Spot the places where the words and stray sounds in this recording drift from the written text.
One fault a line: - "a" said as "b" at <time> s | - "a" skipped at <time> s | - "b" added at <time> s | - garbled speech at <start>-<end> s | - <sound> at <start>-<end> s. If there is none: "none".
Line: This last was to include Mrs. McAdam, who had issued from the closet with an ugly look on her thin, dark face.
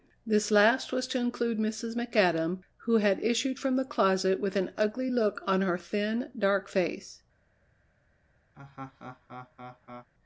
- laugh at 8.5-10.1 s